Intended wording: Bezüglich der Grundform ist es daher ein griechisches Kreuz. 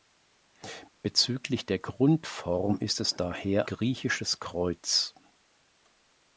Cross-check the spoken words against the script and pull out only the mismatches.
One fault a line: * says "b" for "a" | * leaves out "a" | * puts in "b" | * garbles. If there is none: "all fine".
* leaves out "ein"